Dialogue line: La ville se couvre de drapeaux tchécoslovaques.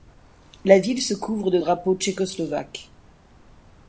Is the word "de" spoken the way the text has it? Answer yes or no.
yes